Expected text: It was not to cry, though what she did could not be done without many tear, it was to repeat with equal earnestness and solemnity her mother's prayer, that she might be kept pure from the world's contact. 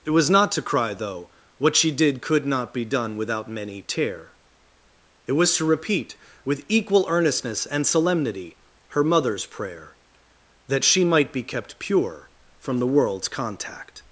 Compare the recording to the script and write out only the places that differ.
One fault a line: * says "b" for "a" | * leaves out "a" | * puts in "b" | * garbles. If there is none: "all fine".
all fine